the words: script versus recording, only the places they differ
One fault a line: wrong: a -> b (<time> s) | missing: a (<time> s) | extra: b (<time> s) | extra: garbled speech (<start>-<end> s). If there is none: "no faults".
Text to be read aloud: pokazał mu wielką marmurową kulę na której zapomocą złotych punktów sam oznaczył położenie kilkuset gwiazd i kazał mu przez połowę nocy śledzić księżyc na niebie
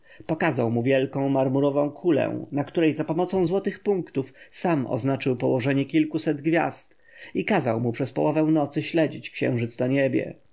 no faults